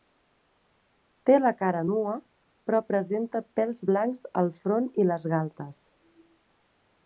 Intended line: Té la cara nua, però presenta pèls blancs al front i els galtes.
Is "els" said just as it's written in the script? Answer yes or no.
no